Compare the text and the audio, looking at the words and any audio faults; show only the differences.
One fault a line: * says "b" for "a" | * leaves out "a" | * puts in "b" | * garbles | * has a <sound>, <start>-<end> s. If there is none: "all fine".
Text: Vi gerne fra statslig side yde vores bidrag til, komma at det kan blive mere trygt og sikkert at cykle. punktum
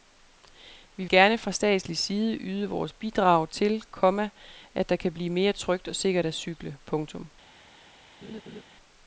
* has a laugh, 8.2-8.6 s